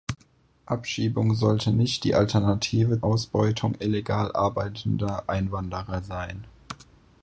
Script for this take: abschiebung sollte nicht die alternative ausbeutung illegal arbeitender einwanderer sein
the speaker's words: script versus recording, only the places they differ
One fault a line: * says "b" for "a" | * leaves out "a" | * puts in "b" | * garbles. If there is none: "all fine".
all fine